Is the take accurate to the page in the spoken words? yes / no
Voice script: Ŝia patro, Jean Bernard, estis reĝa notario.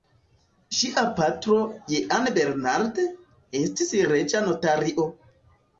yes